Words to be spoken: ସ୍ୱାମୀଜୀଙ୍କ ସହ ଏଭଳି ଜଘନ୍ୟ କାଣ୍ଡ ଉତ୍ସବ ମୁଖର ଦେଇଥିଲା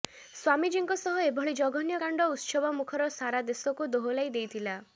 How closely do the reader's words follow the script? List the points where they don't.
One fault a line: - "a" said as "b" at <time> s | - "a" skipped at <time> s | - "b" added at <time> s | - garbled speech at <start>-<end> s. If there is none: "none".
- "ସାରା ଦେଶକୁ ଦୋହଲାଇ" added at 3.1 s